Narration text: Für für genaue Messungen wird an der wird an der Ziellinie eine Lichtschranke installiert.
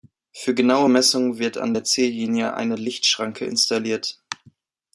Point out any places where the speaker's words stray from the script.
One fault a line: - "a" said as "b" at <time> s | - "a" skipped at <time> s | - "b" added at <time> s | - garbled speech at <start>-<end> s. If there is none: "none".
- "für" skipped at 0.6 s
- "wird an der" skipped at 1.8 s